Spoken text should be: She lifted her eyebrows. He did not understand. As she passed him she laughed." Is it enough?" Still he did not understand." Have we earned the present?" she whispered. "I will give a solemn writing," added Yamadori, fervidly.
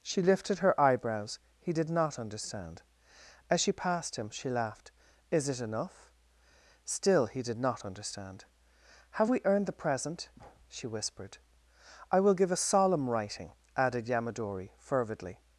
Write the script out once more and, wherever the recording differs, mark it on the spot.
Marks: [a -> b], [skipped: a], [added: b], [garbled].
She lifted her eyebrows. He did not understand. As she passed him she laughed." Is it enough?" Still he did not understand." Have we earned the present?" she whispered. "I will give a solemn writing," added Yamadori, fervidly.